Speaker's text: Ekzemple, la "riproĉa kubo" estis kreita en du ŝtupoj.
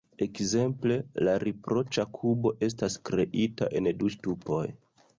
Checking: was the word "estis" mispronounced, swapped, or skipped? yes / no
yes